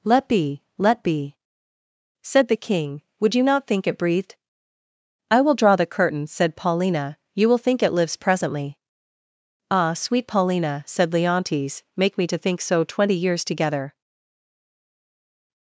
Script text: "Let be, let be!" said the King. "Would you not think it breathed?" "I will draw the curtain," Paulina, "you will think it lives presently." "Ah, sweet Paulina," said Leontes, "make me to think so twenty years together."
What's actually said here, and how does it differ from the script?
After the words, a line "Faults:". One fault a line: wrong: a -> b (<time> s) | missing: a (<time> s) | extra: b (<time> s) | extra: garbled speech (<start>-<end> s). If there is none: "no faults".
"Let be, let be!" said the King. "Would you not think it breathed?" "I will draw the curtain," said Paulina, "you will think it lives presently." "Ah, sweet Paulina," said Leontes, "make me to think so twenty years together."
Faults:
extra: said (6.3 s)